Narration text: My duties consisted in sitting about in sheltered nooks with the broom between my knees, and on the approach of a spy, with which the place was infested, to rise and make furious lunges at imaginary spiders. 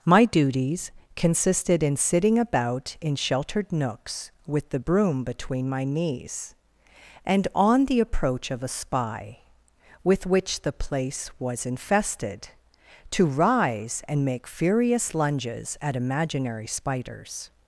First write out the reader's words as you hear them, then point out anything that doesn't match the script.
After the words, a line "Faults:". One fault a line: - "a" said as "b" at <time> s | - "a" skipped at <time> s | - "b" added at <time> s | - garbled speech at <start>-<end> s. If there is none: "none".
My duties consisted in sitting about in sheltered nooks with the broom between my knees, and on the approach of a spy, with which the place was infested, to rise and make furious lunges at imaginary spiders.
Faults:
none